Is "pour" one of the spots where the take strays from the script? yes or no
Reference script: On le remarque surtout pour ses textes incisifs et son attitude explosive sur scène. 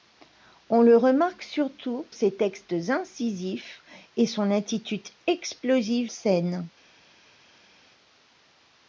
yes